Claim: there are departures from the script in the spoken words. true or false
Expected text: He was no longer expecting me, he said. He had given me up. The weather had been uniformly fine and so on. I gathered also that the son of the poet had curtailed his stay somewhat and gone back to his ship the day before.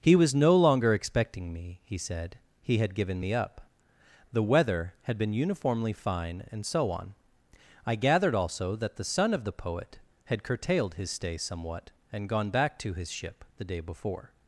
false